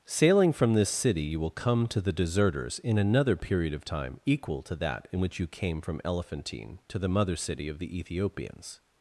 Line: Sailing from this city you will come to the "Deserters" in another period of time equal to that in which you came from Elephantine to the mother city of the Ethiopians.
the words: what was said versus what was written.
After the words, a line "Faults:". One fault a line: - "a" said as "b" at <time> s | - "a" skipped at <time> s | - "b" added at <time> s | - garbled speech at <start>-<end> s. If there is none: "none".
Sailing from this city you will come to the "Deserters" in another period of time equal to that in which you came from Elephantine to the mother city of the Ethiopians.
Faults:
none